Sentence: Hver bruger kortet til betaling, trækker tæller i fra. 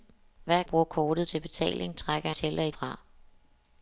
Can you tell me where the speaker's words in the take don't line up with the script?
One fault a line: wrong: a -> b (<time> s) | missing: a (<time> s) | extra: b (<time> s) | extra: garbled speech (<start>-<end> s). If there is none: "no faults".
no faults